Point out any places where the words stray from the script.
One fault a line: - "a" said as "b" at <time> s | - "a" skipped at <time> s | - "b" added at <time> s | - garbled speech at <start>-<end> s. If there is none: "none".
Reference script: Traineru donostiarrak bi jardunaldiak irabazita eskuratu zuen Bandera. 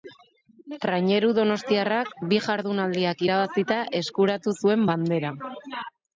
none